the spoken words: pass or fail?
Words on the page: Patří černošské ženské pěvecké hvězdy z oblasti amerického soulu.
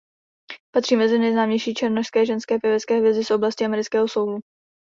fail